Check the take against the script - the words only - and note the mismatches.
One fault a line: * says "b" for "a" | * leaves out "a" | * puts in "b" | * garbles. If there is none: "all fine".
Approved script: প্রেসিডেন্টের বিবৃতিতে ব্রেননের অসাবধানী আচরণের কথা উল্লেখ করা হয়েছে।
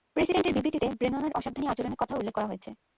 all fine